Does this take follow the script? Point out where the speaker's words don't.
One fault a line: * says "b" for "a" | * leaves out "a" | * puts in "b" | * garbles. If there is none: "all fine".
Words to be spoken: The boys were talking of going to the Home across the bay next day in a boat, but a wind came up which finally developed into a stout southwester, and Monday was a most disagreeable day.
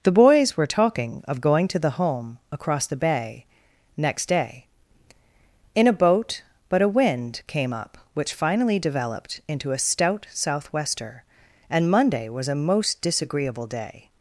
all fine